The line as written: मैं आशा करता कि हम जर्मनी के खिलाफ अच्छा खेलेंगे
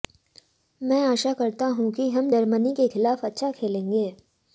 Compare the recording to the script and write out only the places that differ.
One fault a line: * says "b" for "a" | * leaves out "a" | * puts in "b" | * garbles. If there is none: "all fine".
* puts in "हूं"